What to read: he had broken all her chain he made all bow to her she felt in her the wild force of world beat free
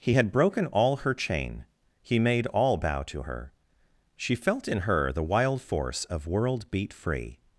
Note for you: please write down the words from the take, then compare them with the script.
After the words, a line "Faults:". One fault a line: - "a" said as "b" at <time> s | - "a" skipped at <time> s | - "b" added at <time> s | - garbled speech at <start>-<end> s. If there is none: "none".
he had broken all her chain he made all bow to her she felt in her the wild force of world beat free
Faults:
none